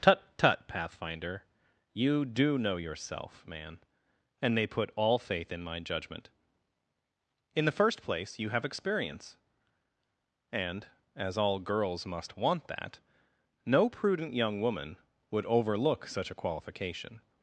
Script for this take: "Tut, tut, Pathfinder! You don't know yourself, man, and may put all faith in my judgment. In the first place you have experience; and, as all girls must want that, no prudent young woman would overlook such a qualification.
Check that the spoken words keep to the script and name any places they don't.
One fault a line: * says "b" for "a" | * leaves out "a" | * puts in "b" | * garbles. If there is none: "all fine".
* says "do" for "don't"